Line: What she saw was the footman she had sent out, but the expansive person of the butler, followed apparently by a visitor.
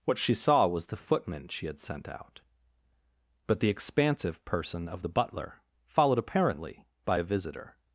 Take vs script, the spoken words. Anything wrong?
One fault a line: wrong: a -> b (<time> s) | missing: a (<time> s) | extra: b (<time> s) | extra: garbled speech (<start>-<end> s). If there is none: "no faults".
no faults